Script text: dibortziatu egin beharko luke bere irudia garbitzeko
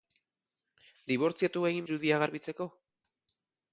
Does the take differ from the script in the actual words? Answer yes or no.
yes